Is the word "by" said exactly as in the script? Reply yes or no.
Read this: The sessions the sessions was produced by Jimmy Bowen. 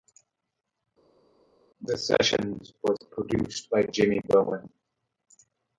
yes